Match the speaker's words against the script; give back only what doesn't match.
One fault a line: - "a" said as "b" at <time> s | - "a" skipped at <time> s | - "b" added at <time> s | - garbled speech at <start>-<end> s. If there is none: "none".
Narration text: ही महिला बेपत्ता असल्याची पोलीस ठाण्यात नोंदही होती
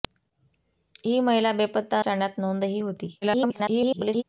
- "असल्याची पोलीस" skipped at 2.0 s
- garbled speech at 3.2-4.2 s